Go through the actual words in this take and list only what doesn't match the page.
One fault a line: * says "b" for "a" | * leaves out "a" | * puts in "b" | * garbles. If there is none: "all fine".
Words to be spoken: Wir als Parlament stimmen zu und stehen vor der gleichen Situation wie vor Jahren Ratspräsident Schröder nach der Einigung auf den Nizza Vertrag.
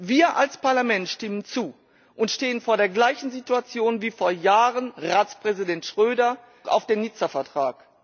* leaves out "nach der Einigung"